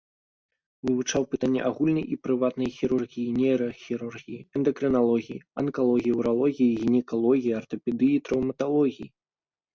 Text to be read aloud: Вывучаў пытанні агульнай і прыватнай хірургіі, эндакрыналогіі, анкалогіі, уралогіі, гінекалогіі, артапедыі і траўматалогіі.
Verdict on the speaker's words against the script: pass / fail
fail